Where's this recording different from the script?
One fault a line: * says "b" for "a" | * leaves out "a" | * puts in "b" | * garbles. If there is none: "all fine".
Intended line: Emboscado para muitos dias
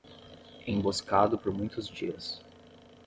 * says "por" for "para"